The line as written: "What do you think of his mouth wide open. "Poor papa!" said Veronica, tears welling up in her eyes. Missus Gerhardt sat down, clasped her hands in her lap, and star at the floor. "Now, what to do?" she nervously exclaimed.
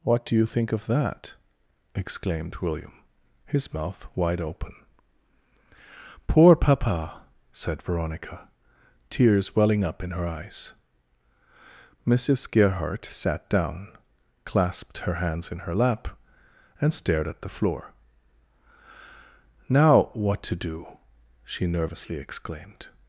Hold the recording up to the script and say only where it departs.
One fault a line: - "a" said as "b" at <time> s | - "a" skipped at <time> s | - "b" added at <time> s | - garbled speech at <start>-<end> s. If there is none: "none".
- "that exclaimed William" added at 0.9 s
- "star" said as "stared" at 16.9 s